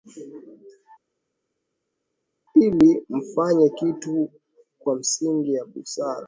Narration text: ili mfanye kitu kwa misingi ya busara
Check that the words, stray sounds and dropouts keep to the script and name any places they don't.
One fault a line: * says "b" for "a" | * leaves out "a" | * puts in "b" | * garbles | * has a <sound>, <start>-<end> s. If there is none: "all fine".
all fine